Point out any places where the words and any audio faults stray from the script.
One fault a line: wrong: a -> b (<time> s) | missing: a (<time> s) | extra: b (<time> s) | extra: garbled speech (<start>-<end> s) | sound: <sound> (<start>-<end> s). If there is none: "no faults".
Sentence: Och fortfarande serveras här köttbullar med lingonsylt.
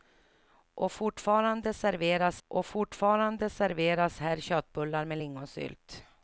extra: och fortfarande serveras (2.5 s)